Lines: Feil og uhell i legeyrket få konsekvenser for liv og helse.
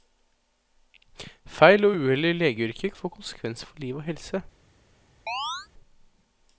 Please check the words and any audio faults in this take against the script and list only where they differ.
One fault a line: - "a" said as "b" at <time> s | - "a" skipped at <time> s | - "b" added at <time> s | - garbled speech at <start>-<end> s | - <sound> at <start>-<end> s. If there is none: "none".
- chirp at 5.3-5.7 s